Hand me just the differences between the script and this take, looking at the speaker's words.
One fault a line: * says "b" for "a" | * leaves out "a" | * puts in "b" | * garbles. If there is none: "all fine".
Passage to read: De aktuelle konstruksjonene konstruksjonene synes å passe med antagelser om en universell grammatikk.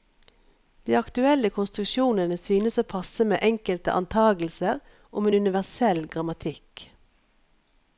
* leaves out "konstruksjonene"
* puts in "enkelte"